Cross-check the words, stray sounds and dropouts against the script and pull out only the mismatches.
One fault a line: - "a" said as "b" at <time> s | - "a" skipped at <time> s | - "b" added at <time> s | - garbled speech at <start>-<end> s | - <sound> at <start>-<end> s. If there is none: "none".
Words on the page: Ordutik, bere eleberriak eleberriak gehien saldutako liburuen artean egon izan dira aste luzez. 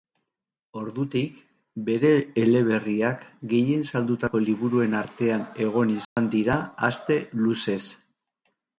- "eleberriak" skipped at 3.3 s
- dropout at 6.0-6.2 s